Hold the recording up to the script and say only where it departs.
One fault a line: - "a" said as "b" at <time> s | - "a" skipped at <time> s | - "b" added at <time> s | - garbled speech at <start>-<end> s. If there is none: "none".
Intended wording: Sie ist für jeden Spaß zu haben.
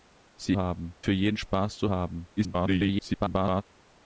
- "ist" said as "haben" at 0.6 s
- garbled speech at 2.4-3.6 s